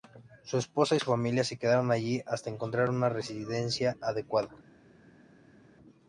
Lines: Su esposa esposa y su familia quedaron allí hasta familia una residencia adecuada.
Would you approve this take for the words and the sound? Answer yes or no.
no